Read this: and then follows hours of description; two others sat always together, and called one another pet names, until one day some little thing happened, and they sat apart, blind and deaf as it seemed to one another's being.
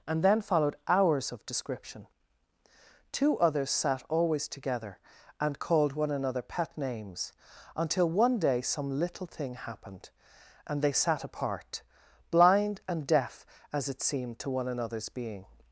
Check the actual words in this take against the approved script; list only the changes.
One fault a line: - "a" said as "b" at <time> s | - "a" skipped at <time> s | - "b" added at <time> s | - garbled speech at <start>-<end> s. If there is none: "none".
- "follows" said as "followed" at 0.4 s